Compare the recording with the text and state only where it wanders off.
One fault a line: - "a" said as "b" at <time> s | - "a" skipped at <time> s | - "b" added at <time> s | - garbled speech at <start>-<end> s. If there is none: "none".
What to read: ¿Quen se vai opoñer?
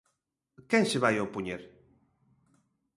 none